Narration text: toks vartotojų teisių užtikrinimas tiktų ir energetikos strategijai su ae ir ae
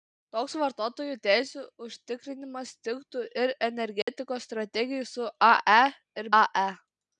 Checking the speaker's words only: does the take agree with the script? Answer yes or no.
yes